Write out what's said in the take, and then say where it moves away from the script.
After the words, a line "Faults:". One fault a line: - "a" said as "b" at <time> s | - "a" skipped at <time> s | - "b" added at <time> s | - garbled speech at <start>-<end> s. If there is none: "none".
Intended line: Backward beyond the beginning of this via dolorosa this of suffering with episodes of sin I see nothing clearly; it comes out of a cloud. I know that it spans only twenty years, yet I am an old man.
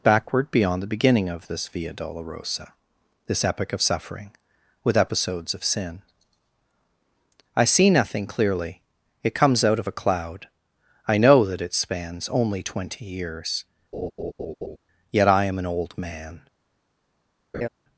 Backward beyond the beginning of this via dolorosa this epic of suffering with episodes of sin I see nothing clearly; it comes out of a cloud. I know that it spans only twenty years, yet I am an old man.
Faults:
- "epic" added at 3.5 s